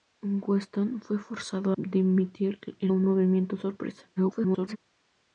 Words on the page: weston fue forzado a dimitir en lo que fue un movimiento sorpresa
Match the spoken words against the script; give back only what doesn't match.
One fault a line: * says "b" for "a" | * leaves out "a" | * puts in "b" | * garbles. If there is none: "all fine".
* leaves out "a"
* leaves out "lo que fue"
* garbles